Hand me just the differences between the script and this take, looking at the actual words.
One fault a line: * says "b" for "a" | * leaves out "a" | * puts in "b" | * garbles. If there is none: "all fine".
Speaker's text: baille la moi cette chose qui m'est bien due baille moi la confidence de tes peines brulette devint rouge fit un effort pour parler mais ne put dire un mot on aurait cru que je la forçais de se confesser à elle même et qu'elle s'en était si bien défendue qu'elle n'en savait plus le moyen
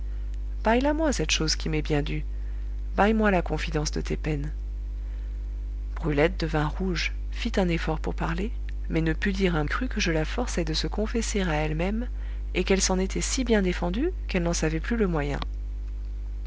* leaves out "mot on aurait"